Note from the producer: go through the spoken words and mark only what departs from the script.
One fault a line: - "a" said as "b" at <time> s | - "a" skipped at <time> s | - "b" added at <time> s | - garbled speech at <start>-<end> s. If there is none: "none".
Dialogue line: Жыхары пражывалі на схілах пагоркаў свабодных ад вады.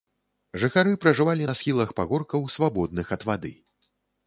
none